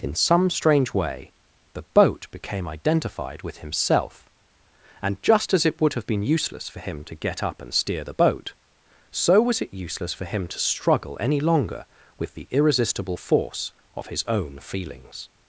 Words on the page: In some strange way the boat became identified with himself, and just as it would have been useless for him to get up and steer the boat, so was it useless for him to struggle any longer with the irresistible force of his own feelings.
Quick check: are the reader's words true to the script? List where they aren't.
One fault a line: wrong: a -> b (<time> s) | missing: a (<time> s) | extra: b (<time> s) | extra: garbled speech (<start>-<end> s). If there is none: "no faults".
no faults